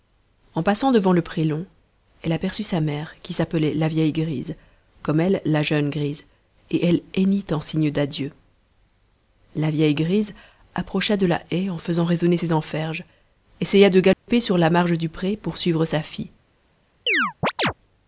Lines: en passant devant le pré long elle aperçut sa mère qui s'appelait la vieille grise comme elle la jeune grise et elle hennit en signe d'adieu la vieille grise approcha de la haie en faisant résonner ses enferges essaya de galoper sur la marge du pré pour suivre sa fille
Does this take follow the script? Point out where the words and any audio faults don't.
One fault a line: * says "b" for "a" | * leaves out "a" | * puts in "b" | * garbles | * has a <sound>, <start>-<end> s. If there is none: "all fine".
* has a dropout, 14.1-14.3 s
* has a chirp, 17.1-17.7 s